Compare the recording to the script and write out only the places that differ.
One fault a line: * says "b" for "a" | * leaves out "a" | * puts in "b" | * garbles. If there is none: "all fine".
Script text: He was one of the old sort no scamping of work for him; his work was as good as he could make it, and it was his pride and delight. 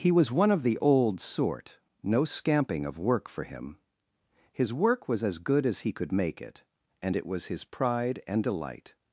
all fine